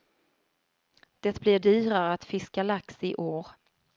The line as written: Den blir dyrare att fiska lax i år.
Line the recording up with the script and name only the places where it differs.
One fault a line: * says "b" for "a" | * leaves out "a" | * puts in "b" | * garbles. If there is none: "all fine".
* says "Det" for "Den"